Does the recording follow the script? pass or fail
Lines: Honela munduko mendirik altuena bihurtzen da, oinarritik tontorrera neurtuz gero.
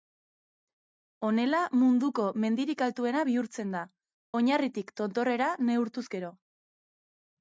pass